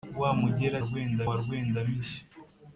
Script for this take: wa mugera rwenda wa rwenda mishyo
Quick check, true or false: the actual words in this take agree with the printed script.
true